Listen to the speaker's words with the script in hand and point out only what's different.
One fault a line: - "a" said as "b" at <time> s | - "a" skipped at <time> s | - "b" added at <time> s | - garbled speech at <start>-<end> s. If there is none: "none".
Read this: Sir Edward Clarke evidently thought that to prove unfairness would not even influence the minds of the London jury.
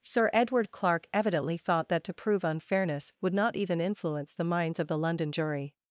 none